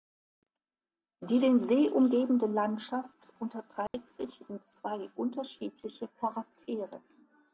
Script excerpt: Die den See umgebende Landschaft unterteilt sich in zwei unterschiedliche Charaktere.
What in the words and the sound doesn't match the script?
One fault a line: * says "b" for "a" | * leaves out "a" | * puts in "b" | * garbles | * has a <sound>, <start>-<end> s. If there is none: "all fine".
* has a dropout, 3.9-3.9 s